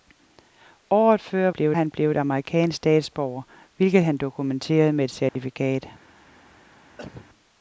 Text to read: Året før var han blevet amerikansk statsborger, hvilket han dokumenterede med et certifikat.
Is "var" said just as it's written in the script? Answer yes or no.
no